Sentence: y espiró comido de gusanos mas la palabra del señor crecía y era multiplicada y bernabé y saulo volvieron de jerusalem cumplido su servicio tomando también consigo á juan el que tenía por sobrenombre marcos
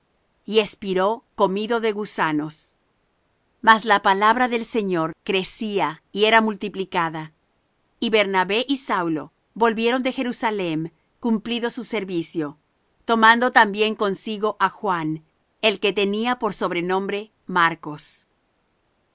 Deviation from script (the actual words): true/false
false